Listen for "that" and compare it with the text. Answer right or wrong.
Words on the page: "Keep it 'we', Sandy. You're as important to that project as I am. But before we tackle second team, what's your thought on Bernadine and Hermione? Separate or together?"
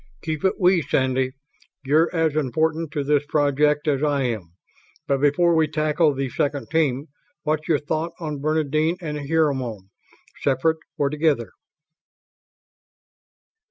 wrong